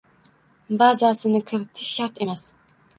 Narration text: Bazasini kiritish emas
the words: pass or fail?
fail